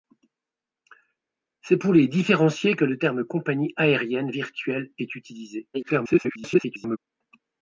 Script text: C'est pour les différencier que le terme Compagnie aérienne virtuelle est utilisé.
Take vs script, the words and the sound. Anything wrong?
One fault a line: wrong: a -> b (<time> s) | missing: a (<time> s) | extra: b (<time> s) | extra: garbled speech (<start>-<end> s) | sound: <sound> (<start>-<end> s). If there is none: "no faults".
extra: garbled speech (5.7-7.0 s)